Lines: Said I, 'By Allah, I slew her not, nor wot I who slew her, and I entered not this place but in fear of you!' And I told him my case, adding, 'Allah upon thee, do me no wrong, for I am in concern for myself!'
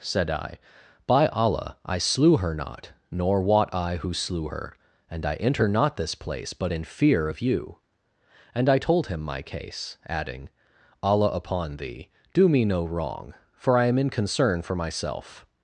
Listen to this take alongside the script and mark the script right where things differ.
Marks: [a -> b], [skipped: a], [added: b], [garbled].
Said I, 'By Allah, I slew her not, nor wot I who slew her, and I [entered -> enter] not this place but in fear of you!' And I told him my case, adding, 'Allah upon thee, do me no wrong, for I am in concern for myself!'